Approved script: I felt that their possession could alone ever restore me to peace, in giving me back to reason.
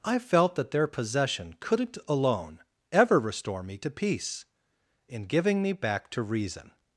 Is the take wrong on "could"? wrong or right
wrong